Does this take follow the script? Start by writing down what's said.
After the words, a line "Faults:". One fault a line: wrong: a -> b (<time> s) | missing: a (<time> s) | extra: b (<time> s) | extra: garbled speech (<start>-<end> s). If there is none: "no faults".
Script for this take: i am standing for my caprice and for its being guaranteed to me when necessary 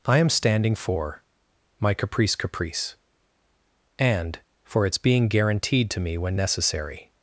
i am standing for my caprice caprice and for its being guaranteed to me when necessary
Faults:
extra: caprice (2.4 s)